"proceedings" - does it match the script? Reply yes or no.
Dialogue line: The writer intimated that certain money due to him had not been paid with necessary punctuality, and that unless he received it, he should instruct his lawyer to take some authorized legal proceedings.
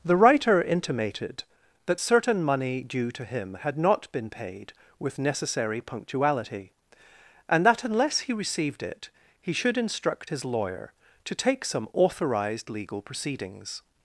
yes